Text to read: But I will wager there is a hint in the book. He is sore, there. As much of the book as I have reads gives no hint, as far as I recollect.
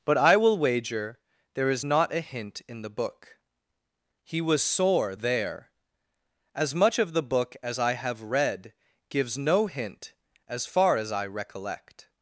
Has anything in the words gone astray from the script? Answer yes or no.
yes